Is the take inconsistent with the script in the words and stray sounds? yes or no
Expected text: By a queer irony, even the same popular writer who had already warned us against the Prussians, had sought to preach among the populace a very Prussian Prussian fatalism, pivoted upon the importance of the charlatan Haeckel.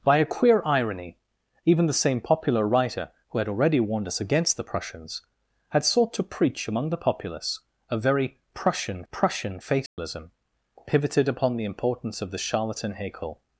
yes